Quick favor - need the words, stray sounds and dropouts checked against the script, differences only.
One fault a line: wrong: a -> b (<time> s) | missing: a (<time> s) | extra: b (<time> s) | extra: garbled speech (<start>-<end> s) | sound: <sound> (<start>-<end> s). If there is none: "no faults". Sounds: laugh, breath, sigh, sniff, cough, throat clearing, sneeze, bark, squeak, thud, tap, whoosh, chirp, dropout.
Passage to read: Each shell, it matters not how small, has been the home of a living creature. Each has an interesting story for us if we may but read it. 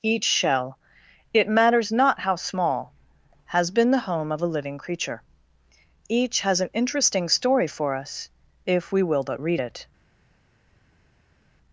wrong: may -> will (9.0 s)